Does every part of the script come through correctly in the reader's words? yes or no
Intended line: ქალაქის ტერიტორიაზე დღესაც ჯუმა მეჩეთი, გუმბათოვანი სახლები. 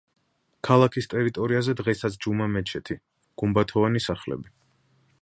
yes